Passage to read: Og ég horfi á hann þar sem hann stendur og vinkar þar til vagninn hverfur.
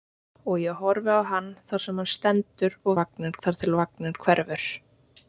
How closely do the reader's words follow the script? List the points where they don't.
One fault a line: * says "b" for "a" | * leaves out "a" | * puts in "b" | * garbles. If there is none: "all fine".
* says "vagninn" for "vinkar"